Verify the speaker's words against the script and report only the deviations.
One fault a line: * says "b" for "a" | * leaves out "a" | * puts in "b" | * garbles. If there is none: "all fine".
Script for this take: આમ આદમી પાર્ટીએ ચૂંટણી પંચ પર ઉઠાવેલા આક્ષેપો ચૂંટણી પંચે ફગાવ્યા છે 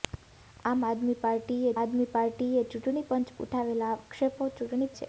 * puts in "આદમી પાર્ટીએ"
* leaves out "પર"
* leaves out "પંચે ફગાવ્યા"